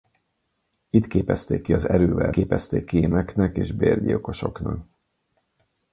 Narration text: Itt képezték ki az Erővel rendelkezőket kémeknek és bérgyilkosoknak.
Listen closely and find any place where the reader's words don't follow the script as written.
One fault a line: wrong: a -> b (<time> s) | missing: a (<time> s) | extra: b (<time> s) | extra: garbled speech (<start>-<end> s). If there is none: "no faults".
wrong: rendelkezőket -> képezték (2.3 s)